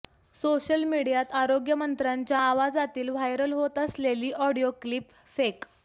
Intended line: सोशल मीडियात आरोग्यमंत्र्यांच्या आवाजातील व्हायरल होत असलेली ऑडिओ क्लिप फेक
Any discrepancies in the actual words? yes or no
no